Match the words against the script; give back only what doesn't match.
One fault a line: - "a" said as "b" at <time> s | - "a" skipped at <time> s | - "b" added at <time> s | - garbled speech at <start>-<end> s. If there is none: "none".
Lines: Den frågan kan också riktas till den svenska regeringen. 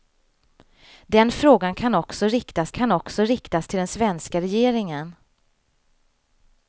- "kan också riktas" added at 2.7 s